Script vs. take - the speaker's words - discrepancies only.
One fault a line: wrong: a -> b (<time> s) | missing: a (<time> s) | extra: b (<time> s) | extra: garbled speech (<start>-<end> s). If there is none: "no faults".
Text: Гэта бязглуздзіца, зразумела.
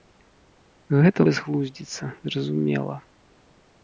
no faults